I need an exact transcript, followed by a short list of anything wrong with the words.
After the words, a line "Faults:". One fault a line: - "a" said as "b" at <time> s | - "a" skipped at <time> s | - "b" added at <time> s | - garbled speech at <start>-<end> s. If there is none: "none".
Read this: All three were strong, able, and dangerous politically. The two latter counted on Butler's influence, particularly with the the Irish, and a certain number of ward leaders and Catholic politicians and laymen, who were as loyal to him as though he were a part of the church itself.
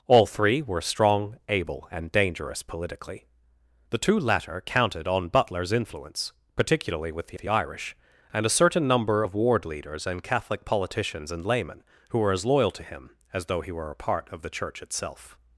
All three were strong, able, and dangerous politically. The two latter counted on Butler's influence, particularly with the the Irish, and a certain number of ward leaders and Catholic politicians and laymen, who were as loyal to him as though he were a part of the church itself.
Faults:
none